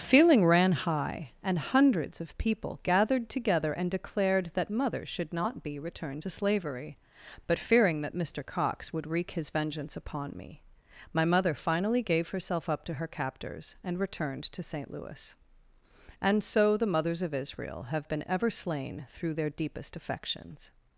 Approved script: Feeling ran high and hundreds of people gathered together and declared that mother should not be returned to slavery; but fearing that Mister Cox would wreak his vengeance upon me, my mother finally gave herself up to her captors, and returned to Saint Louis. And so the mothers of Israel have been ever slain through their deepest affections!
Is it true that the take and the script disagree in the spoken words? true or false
false